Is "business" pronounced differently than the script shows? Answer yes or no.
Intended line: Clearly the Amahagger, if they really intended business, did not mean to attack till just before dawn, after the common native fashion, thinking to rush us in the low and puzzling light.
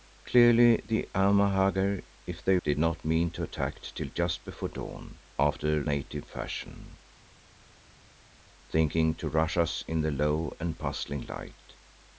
yes